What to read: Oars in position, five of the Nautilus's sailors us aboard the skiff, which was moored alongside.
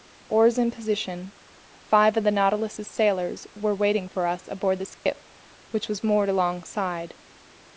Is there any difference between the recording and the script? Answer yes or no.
yes